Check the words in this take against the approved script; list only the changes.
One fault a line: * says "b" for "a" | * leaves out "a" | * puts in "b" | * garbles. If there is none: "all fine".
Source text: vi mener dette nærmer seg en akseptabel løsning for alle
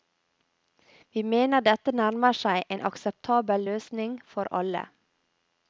all fine